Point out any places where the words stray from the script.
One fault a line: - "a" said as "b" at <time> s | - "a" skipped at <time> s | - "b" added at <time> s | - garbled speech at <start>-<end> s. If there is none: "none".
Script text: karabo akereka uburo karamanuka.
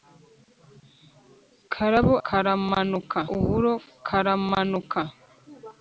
- "akereka" said as "karamanuka" at 2.3 s